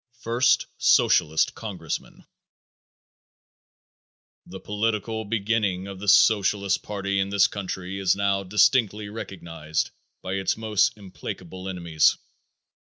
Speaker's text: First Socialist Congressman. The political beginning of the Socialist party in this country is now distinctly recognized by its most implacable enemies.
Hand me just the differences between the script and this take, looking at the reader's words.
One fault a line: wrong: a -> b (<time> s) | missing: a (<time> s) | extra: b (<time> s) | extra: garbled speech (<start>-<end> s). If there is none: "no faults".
no faults